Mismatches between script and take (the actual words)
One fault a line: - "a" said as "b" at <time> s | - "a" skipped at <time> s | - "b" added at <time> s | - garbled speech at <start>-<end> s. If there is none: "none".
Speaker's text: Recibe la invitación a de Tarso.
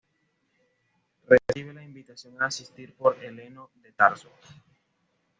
- "asistir por Heleno" added at 2.5 s